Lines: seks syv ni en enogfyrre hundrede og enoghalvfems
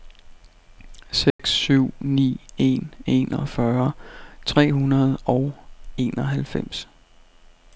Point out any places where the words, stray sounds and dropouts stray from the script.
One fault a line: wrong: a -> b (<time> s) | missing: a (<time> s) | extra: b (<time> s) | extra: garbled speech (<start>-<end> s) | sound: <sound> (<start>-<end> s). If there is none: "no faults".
sound: dropout (1.3-1.4 s)
extra: tre (4.5 s)